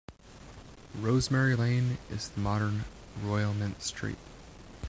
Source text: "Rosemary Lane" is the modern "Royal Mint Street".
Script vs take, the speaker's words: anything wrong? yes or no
no